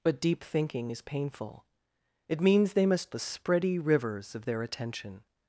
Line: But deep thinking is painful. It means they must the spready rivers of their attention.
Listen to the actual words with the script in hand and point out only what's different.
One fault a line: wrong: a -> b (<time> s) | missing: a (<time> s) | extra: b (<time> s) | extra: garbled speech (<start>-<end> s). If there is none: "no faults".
no faults